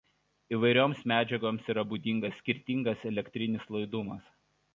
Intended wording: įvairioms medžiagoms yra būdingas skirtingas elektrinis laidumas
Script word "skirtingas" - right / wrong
right